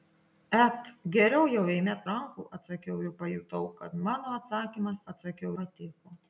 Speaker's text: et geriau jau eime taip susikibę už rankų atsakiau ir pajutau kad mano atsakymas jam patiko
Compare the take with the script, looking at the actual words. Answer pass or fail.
fail